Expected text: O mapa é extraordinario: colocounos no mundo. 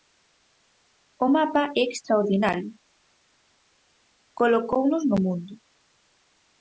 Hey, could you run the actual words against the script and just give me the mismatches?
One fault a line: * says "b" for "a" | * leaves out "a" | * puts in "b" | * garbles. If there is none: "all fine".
all fine